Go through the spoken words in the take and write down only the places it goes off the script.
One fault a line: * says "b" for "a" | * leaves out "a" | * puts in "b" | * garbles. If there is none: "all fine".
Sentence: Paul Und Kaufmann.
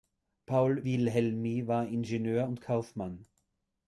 * puts in "Wilhelmi war Ingenieur"